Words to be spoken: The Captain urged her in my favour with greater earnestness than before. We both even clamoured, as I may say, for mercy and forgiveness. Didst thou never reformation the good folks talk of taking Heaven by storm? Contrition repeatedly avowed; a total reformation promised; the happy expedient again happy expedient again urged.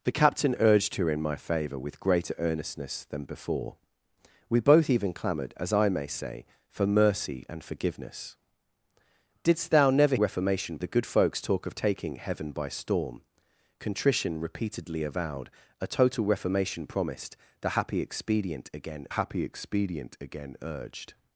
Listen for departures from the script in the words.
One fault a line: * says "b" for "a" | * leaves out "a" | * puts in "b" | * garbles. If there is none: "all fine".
all fine